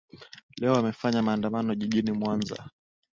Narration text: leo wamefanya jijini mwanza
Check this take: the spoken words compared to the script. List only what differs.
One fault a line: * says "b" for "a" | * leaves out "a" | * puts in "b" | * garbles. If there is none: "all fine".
* puts in "maandamano"